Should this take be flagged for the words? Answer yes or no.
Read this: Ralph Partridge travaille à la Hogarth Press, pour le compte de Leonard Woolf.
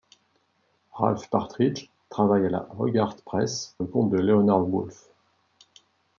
yes